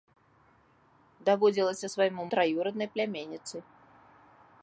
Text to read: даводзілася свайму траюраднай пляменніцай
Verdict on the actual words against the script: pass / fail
pass